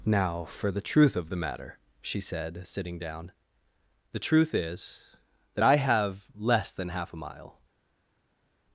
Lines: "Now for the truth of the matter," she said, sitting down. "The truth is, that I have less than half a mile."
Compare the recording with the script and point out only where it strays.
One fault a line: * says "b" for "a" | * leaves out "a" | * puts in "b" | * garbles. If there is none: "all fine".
all fine